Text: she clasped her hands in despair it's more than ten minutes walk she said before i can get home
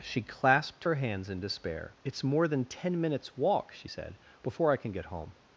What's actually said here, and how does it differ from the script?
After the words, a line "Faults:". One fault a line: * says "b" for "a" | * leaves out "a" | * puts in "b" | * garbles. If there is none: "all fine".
she clasped her hands in despair it's more than ten minutes walk she said before i can get home
Faults:
all fine